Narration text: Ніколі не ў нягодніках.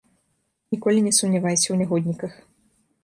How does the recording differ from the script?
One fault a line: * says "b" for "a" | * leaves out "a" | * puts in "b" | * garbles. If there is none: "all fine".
* puts in "сумнявайся"